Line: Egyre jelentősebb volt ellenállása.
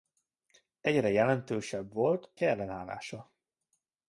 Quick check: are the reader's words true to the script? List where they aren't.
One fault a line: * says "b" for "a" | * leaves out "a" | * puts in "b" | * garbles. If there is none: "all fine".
all fine